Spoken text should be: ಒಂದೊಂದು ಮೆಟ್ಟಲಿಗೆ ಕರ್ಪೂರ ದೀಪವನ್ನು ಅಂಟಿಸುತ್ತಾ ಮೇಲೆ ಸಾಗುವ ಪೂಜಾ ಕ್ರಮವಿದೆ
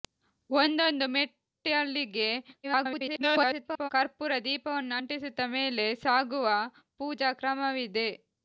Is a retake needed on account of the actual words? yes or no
yes